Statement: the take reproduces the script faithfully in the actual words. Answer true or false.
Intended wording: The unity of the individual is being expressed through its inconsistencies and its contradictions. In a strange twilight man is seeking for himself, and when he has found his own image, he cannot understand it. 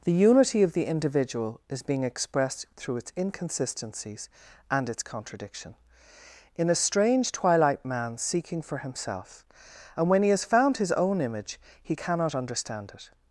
false